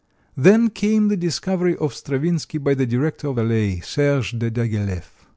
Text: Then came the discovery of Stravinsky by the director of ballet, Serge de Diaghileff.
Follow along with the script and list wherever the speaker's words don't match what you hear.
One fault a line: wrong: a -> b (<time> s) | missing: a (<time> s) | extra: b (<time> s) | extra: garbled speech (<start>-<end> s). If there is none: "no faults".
no faults